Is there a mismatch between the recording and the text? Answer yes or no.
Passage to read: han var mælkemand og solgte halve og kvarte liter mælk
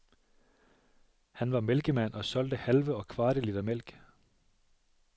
no